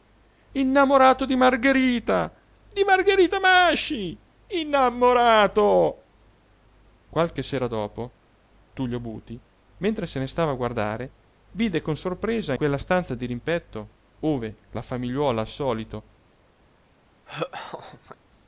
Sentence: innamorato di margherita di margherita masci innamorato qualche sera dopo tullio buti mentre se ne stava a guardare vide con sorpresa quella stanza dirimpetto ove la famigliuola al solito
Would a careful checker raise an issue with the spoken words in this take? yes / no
no